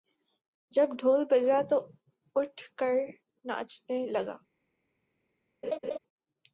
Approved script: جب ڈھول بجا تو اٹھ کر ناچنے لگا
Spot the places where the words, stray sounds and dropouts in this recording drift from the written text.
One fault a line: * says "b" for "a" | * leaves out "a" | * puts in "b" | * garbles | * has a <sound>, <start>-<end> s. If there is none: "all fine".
* has a laugh, 5.6-6.0 s